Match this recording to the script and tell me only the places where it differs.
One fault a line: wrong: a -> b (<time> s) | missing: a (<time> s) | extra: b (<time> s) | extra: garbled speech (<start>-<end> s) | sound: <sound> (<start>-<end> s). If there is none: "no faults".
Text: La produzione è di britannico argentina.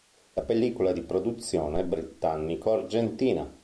wrong: produzione -> pellicola (0.4 s)
extra: produzione (1.0 s)